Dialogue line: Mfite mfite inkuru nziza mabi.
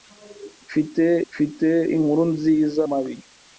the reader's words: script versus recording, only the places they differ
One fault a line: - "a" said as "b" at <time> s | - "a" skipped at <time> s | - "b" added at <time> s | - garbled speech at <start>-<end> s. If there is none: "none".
none